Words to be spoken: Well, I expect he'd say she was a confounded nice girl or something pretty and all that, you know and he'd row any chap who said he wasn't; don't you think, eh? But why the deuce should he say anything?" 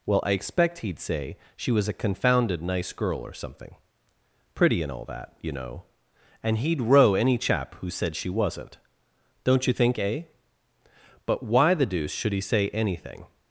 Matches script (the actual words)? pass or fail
fail